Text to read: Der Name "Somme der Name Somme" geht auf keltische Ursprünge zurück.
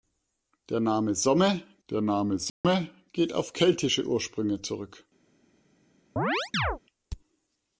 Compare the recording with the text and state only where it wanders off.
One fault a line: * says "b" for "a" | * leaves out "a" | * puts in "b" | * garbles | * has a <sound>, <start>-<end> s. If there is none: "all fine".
* has a dropout, 2.5-2.6 s
* has a chirp, 6.2-6.8 s